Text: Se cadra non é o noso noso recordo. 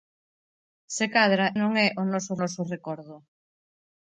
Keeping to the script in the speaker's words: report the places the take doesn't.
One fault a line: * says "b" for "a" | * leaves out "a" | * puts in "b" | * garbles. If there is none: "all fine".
all fine